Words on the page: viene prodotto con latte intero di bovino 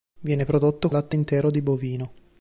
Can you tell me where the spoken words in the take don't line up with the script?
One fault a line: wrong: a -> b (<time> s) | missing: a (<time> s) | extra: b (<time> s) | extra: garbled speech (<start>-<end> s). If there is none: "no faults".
missing: con (0.9 s)